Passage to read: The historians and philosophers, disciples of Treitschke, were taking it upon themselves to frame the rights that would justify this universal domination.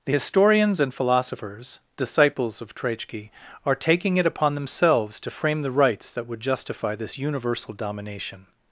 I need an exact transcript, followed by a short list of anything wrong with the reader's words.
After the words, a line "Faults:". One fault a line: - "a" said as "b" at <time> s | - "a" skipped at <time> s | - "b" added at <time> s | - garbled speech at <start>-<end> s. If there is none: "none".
The historians and philosophers, disciples of Treitschke, are taking it upon themselves to frame the rights that would justify this universal domination.
Faults:
- "were" said as "are" at 3.7 s